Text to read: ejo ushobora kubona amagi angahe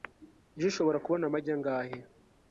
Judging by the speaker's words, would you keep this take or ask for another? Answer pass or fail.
pass